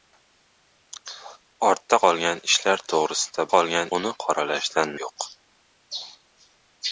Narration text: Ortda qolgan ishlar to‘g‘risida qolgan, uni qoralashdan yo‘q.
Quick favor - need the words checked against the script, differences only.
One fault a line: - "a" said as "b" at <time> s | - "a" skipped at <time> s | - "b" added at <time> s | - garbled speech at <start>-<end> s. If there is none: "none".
none